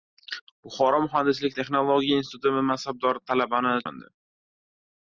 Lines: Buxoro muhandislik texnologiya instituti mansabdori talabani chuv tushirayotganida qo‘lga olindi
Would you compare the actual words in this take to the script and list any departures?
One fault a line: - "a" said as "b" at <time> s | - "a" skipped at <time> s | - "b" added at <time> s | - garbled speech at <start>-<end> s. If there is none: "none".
- "chuv tushirayotganida qo‘lga" skipped at 3.7 s